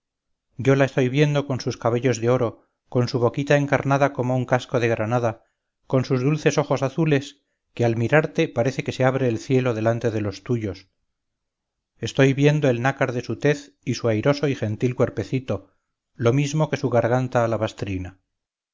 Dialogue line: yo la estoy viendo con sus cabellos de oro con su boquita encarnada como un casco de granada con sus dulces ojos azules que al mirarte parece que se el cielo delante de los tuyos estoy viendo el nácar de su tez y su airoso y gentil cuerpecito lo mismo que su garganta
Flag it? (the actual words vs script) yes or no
yes